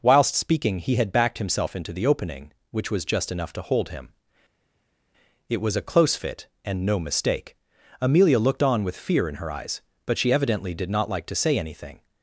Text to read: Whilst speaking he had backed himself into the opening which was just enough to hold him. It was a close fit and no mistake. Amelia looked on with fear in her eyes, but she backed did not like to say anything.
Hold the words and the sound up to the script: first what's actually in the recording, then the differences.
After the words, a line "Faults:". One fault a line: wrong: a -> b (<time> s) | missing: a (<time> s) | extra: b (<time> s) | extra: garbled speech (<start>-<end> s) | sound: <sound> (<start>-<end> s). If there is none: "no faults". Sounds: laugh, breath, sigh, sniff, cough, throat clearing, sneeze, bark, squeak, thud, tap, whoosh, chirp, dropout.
Whilst speaking he had backed himself into the opening which was just enough to hold him. It was a close fit and no mistake. Amelia looked on with fear in her eyes, but she evidently did not like to say anything.
Faults:
wrong: backed -> evidently (10.3 s)